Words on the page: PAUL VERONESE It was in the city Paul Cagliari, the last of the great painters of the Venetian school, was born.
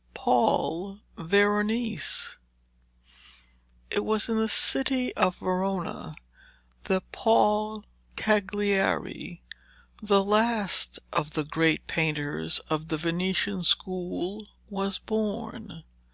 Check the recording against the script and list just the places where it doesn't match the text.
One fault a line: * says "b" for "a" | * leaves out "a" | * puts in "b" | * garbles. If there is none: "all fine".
* puts in "of Verona that"